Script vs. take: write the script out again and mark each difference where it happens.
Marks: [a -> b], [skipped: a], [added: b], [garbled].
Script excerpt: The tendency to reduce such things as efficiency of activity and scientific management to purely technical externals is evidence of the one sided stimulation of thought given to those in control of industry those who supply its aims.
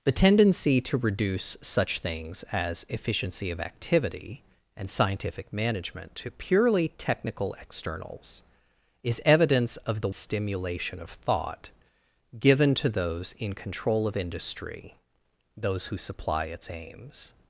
The tendency to reduce such things as efficiency of activity and scientific management to purely technical externals is evidence of the [skipped: one sided] stimulation of thought given to those in control of industry those who supply its aims.